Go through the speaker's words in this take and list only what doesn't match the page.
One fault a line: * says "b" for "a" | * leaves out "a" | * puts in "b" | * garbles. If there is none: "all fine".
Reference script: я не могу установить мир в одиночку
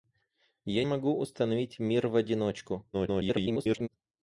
* leaves out "не"
* garbles